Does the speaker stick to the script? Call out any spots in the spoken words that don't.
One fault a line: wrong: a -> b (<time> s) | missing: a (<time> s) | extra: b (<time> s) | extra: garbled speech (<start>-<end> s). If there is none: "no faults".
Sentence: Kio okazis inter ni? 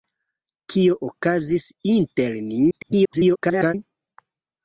extra: garbled speech (2.7-3.7 s)